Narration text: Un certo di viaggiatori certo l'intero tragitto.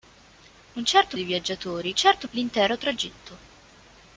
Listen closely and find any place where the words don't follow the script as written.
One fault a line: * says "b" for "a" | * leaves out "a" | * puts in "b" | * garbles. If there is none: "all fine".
all fine